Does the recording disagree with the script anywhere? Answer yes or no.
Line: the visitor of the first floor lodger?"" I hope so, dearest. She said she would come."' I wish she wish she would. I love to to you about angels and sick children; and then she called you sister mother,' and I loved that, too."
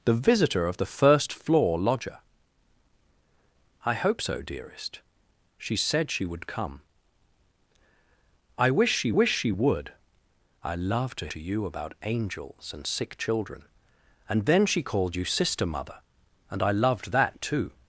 no